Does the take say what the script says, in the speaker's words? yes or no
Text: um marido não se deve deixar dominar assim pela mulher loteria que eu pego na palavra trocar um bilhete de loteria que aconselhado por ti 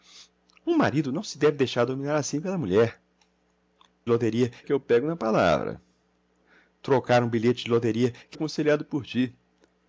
yes